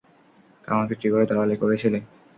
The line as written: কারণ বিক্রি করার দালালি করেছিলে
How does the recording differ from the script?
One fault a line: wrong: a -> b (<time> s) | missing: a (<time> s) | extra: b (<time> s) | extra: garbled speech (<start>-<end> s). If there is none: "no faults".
no faults